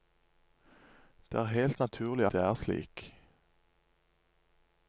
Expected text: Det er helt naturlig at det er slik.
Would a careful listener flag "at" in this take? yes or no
yes